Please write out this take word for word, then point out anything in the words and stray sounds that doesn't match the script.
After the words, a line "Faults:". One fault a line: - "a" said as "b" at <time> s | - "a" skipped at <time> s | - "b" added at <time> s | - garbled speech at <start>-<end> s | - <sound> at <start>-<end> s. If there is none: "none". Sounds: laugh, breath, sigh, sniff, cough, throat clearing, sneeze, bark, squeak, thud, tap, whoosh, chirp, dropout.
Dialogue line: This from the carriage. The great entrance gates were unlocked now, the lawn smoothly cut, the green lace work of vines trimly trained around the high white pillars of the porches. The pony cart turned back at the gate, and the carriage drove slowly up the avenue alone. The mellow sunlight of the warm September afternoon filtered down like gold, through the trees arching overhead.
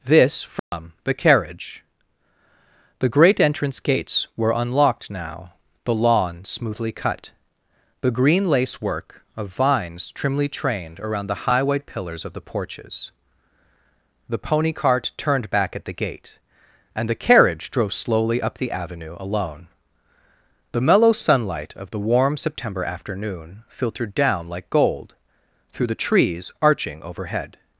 This from the carriage. The great entrance gates were unlocked now, the lawn smoothly cut, the green lace work of vines trimly trained around the high white pillars of the porches. The pony cart turned back at the gate, and the carriage drove slowly up the avenue alone. The mellow sunlight of the warm September afternoon filtered down like gold, through the trees arching overhead.
Faults:
- dropout at 0.6-0.7 s